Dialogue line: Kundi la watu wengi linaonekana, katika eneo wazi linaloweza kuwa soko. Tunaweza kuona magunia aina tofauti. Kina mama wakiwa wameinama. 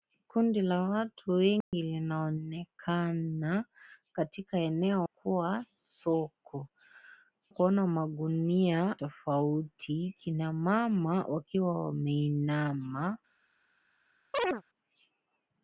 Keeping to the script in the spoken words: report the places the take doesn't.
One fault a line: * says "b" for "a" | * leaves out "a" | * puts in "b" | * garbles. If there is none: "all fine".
* leaves out "wazi linaloweza"
* leaves out "Tunaweza"
* leaves out "aina"